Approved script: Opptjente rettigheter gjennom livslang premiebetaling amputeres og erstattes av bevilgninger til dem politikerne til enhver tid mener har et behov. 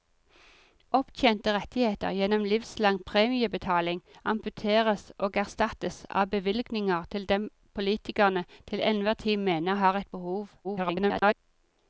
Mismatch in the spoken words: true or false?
true